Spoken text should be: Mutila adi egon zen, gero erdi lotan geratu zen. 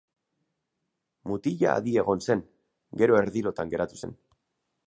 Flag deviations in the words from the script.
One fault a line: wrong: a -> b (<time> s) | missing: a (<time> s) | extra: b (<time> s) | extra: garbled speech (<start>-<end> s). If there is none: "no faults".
no faults